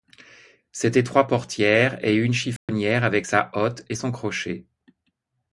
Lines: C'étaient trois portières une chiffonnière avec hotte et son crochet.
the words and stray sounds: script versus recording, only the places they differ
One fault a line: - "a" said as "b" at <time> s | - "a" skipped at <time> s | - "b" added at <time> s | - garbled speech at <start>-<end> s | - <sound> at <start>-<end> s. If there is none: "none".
- "et" added at 2.0 s
- dropout at 2.6-2.7 s
- "sa" added at 3.2 s